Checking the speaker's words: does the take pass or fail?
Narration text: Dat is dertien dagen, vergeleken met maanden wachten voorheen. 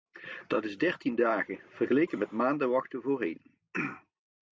pass